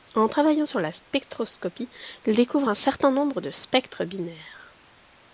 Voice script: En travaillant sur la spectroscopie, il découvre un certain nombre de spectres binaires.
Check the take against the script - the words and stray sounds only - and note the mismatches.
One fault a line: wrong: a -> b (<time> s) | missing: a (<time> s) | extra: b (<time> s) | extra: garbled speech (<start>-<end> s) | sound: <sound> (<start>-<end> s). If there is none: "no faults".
no faults